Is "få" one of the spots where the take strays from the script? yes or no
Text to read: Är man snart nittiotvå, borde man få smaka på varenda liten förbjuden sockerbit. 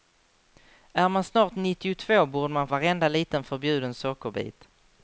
yes